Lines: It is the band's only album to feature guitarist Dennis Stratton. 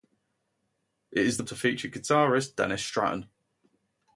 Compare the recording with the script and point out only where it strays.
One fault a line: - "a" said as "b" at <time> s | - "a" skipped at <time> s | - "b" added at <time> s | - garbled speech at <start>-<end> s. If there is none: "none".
- "band's only album" skipped at 1.4 s